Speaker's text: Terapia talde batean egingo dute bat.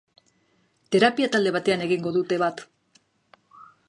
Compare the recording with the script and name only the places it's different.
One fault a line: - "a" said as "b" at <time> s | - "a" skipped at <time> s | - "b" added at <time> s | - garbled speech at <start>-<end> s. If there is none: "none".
none